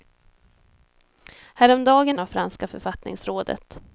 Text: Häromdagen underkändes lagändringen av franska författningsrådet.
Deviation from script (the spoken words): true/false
true